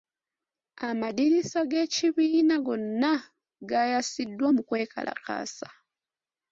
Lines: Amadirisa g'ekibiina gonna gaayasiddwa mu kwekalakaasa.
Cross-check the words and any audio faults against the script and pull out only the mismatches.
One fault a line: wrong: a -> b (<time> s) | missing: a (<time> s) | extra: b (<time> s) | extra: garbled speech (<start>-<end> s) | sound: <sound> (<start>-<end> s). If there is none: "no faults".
no faults